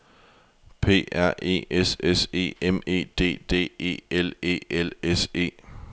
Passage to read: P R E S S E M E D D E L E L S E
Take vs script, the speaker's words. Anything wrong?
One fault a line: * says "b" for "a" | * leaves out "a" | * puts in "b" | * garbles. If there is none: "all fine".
all fine